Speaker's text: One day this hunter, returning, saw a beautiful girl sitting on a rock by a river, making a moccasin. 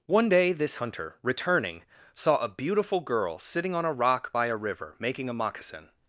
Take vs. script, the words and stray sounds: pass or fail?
pass